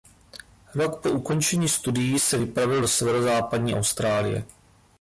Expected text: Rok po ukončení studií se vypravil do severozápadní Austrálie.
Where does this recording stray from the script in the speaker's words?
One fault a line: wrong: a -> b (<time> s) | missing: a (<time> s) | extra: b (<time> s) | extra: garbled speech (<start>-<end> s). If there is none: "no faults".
no faults